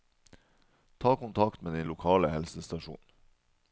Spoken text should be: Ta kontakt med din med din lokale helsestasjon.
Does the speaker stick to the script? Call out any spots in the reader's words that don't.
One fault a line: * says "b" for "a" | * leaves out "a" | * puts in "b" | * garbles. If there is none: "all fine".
* leaves out "med din"